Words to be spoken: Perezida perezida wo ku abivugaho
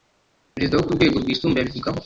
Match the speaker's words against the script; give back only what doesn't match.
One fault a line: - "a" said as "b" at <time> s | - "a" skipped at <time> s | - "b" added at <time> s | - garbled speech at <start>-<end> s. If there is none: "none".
- "perezida" skipped at 0.8 s
- "rwego rwisumbuye" added at 1.0 s